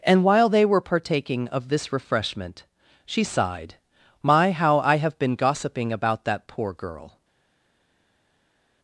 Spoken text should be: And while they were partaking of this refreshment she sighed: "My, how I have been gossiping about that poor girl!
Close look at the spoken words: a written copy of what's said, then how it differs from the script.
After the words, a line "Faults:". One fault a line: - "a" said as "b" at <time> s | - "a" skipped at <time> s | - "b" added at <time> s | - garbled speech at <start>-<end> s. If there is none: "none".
And while they were partaking of this refreshment she sighed: "My, how I have been gossiping about that poor girl!
Faults:
none